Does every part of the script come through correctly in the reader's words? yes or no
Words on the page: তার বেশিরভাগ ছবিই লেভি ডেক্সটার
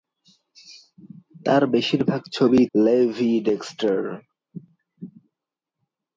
yes